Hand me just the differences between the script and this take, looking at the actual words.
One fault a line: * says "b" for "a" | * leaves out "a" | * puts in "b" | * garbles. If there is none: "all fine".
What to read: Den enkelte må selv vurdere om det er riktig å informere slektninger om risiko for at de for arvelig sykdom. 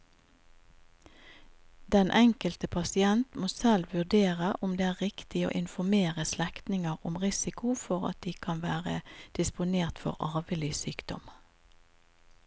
* puts in "pasient"
* puts in "kan være disponert"